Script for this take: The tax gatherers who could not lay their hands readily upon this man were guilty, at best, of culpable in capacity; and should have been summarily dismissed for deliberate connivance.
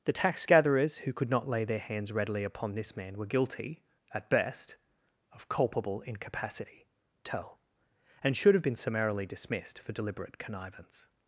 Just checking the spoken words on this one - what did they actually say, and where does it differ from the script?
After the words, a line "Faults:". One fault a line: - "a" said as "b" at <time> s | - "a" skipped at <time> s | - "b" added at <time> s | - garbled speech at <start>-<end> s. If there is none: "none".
The tax gatherers who could not lay their hands readily upon this man were guilty, at best, of culpable incapacity tell; and should have been summarily dismissed for deliberate connivance.
Faults:
- "in capacity" said as "incapacity tell" at 6.0 s